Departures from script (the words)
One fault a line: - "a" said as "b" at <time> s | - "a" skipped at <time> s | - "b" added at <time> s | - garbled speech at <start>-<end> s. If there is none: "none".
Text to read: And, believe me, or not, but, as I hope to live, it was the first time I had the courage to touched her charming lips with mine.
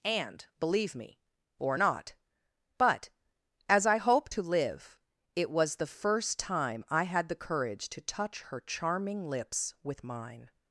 - "touched" said as "touch" at 8.0 s